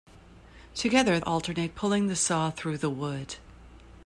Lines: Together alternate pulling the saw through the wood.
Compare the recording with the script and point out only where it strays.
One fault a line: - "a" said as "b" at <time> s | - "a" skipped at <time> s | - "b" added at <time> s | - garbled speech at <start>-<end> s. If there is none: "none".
none